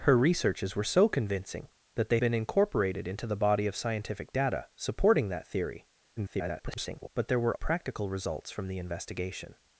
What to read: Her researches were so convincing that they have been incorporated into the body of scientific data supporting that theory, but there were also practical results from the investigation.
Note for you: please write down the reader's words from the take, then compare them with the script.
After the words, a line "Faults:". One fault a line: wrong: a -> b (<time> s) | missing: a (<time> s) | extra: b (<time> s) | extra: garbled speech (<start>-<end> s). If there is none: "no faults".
Her researches were so convincing that they been incorporated into the body of scientific data supporting that theory, [garbled] but there were practical results from the investigation.
Faults:
missing: have (2.2 s)
extra: garbled speech (6.2-7.1 s)
missing: also (7.5 s)